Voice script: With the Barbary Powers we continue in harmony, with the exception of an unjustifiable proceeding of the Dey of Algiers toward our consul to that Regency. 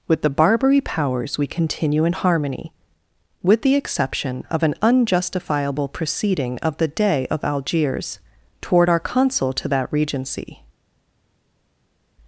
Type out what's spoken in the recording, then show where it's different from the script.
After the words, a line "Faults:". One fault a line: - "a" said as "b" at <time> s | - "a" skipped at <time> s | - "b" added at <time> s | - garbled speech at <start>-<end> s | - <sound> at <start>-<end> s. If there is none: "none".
With the Barbary Powers we continue in harmony, with the exception of an unjustifiable proceeding of the Dey of Algiers toward our consul to that Regency.
Faults:
none